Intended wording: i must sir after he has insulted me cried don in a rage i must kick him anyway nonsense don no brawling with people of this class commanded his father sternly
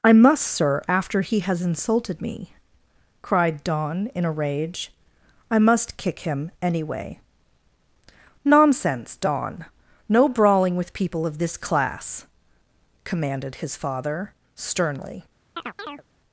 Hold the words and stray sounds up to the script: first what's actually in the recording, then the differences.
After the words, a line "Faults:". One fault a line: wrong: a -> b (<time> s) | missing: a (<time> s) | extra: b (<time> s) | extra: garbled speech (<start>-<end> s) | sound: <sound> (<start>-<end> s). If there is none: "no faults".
i must sir after he has insulted me cried don in a rage i must kick him anyway nonsense don no brawling with people of this class commanded his father sternly
Faults:
sound: chirp (15.6-16.0 s)